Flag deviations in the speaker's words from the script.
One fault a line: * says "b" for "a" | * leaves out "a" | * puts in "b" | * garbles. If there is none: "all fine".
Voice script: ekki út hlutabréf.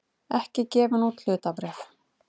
* puts in "gefin"